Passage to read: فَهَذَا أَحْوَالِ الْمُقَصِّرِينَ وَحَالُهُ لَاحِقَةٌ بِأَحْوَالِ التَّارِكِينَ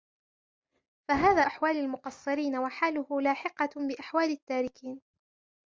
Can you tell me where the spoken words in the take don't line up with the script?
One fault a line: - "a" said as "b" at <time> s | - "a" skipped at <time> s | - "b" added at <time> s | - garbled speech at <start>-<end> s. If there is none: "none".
none